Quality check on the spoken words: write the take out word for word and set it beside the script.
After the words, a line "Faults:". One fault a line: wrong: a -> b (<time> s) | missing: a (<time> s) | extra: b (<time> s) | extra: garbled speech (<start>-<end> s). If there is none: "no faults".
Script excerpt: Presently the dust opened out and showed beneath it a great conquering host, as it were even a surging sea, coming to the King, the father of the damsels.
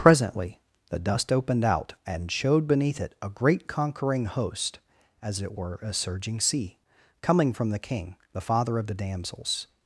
Presently the dust opened out and showed beneath it a great conquering host, as it were a surging sea, coming from the King, the father of the damsels.
Faults:
missing: even (5.8 s)
wrong: to -> from (7.5 s)